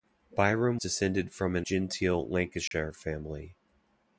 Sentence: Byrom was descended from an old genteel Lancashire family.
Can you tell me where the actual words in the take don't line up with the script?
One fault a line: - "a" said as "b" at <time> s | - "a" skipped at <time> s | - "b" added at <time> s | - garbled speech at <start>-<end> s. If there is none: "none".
- "was" skipped at 0.8 s
- "old" skipped at 1.6 s